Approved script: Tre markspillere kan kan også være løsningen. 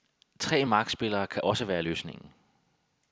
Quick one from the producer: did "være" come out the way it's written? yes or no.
yes